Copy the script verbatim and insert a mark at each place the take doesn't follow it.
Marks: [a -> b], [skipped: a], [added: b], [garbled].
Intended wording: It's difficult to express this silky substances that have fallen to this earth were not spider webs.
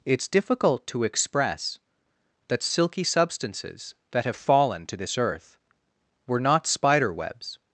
It's difficult to express [this -> that] silky substances that have fallen to this earth were not spider webs.